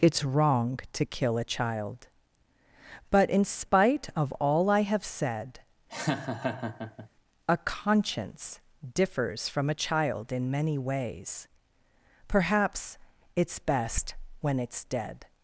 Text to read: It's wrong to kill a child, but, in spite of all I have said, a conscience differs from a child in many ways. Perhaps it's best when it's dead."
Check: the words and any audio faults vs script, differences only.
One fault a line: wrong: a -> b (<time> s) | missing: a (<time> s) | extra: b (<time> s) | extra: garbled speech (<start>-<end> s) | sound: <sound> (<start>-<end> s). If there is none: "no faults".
sound: laugh (5.9-7.1 s)